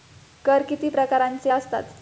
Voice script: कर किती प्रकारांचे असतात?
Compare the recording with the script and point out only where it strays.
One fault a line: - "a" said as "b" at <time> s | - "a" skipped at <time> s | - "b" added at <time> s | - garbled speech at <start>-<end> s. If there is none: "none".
none